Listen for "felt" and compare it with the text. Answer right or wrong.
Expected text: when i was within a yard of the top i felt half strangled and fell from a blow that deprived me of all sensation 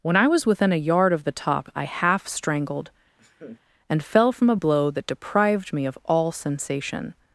wrong